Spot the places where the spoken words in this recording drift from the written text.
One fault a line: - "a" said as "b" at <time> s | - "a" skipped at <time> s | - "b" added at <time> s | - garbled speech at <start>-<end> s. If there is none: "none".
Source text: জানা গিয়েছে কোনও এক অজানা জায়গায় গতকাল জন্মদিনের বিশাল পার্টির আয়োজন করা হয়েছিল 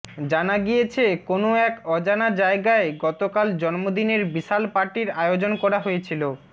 none